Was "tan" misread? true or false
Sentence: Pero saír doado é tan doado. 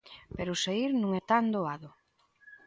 false